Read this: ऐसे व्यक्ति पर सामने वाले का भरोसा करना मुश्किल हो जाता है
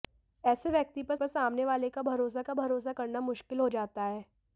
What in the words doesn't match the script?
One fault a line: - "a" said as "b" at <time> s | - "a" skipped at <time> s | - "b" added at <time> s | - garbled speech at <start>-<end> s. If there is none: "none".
- "पर" added at 1.1 s
- "का भरोसा" added at 2.4 s